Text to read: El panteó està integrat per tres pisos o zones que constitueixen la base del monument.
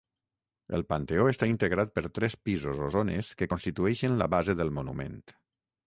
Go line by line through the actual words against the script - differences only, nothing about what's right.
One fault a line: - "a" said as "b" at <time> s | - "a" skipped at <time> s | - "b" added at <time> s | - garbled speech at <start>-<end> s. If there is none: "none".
none